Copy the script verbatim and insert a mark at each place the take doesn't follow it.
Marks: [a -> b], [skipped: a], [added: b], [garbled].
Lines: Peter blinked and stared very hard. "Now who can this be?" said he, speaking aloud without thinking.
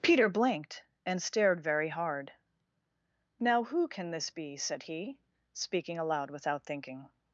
Peter blinked and stared very hard. "Now who can this be?" said he, speaking aloud without thinking.